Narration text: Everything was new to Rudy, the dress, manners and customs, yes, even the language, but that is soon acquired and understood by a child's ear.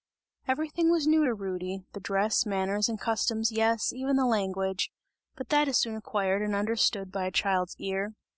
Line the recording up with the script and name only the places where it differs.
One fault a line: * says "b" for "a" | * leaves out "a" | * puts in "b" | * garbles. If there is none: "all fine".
all fine